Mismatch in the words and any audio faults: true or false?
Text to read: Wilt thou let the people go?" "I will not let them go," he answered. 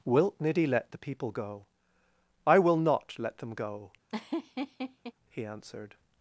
true